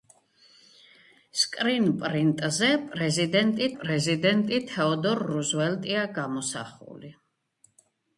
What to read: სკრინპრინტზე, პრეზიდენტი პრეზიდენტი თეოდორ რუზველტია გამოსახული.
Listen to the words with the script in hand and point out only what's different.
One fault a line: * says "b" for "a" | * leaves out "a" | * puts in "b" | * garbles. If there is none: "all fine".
all fine